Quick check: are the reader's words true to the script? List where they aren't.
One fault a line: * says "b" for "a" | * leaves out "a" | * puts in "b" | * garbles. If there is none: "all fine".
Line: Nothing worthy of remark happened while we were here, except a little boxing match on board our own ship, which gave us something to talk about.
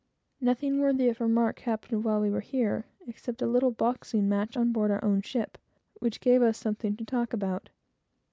all fine